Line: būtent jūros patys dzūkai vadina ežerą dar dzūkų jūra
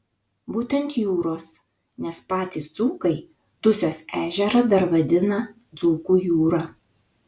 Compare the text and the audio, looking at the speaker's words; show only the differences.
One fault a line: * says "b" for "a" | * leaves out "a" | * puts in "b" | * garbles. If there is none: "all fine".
* puts in "nes"
* says "dusios" for "vadina"
* puts in "vadina"